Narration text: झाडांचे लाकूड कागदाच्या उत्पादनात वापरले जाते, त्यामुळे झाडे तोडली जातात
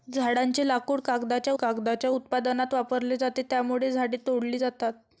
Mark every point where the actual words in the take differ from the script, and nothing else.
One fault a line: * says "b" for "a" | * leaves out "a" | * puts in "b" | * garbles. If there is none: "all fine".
* puts in "कागदाच्या"